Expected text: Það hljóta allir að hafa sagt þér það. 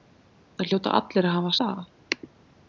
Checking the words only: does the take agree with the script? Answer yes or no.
no